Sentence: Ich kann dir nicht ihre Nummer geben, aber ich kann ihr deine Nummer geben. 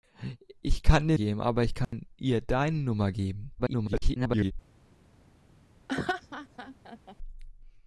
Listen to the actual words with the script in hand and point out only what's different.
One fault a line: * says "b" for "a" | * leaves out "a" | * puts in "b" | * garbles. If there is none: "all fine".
* leaves out "nicht ihre Nummer"
* garbles